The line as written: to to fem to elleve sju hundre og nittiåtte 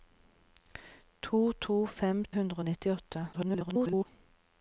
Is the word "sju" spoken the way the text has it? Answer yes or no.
no